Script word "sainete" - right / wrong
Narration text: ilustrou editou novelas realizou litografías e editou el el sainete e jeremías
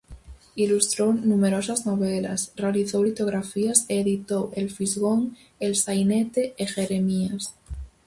right